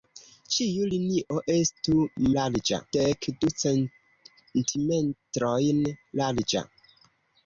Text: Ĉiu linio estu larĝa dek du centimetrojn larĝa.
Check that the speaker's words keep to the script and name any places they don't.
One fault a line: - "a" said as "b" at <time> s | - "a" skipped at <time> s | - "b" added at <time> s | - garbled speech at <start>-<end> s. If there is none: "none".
none